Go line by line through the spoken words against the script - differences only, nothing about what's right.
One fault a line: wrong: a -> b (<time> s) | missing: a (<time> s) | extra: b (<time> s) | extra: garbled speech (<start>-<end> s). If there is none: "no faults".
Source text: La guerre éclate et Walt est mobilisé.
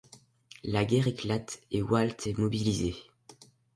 no faults